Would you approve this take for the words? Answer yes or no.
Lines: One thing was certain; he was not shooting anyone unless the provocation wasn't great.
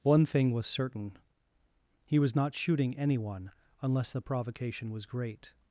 no